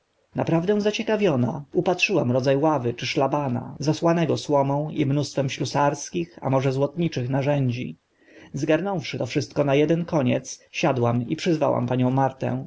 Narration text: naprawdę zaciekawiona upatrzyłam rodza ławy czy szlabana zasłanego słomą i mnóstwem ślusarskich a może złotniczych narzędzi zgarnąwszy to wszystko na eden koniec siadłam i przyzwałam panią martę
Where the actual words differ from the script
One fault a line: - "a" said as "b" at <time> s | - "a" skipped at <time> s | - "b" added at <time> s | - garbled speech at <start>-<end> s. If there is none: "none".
none